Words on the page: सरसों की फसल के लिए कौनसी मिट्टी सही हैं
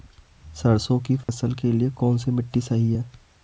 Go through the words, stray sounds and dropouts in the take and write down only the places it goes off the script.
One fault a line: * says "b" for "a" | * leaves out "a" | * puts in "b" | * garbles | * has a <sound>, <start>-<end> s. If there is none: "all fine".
* has a dropout, 1.2-1.3 s